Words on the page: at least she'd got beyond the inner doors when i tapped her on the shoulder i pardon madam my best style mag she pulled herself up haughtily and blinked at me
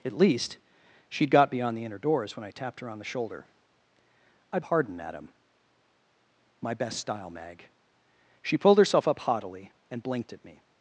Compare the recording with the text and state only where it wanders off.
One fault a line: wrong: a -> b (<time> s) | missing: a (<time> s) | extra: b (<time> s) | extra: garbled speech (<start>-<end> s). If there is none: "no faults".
no faults